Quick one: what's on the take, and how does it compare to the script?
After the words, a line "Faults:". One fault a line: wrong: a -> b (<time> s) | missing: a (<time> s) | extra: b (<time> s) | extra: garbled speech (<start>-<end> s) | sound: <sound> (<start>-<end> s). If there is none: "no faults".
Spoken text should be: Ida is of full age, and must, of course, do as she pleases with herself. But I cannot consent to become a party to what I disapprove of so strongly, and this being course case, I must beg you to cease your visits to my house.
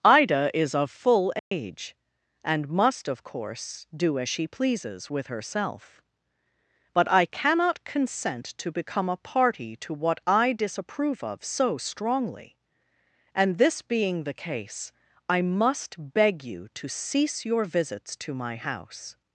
Ida is of full age, and must, of course, do as she pleases with herself. But I cannot consent to become a party to what I disapprove of so strongly, and this being the case, I must beg you to cease your visits to my house.
Faults:
sound: dropout (1.4-1.5 s)
wrong: course -> the (14.2 s)